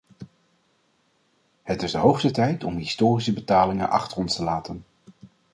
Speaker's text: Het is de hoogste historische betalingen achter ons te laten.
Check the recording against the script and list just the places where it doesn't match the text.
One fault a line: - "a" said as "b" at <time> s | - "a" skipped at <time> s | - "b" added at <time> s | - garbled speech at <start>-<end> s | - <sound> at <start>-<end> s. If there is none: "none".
- "tijd om" added at 2.3 s